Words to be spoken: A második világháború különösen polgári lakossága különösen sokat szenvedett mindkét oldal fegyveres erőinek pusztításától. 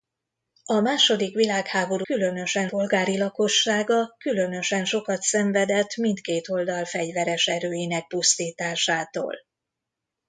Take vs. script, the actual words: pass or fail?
pass